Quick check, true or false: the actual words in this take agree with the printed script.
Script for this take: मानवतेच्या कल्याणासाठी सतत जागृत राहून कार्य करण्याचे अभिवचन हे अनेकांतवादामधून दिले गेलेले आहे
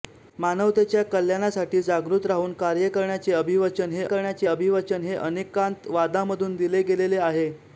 false